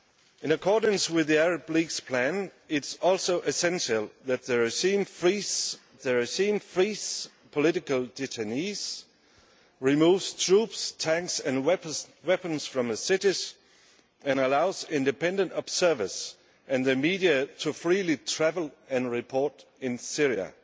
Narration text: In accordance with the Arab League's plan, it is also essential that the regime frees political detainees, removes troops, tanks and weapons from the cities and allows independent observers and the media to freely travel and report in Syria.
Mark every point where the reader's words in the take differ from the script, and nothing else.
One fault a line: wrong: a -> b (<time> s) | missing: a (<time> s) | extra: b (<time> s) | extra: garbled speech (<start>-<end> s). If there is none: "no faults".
extra: the regime frees (6.0 s)